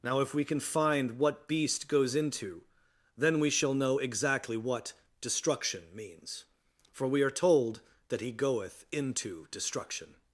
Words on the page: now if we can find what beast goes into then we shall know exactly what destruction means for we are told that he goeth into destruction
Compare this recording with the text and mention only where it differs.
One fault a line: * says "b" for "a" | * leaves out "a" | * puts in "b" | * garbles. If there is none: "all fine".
all fine